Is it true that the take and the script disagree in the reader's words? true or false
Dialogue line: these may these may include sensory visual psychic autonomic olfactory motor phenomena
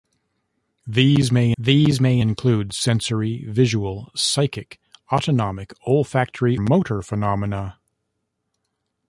false